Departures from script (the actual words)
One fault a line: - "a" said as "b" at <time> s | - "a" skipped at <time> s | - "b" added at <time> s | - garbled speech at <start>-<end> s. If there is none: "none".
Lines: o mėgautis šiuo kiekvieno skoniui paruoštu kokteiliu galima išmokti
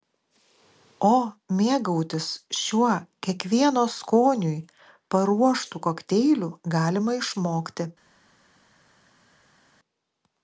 none